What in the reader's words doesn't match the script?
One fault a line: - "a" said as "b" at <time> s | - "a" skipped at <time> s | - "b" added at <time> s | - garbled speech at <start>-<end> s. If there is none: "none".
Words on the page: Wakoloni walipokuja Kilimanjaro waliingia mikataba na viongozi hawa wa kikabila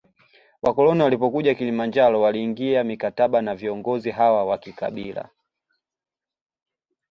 none